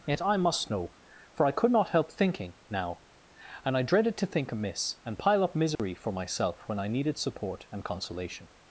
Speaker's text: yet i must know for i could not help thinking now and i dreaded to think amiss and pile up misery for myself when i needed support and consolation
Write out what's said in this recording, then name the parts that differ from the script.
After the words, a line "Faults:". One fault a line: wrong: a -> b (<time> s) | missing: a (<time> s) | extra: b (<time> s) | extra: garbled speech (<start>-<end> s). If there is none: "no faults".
yet i must know for i could not help thinking now and i dreaded to think amiss and pile up misery for myself when i needed support and consolation
Faults:
no faults